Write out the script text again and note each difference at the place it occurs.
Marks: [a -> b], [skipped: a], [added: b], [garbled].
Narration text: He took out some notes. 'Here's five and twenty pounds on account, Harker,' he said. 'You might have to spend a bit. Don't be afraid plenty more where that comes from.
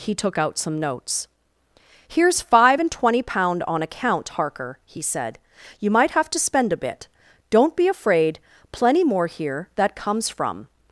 He took out some notes. 'Here's five and twenty [pounds -> pound] on account, Harker,' he said. 'You might have to spend a bit. Don't be afraid plenty more [where -> here] that comes from.